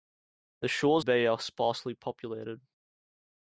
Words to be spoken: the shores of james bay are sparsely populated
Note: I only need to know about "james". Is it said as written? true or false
false